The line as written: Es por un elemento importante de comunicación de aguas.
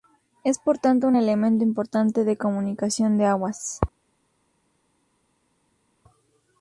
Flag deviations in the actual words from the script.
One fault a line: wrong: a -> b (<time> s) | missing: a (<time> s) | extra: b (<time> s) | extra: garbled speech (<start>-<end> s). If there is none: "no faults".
extra: tanto (0.8 s)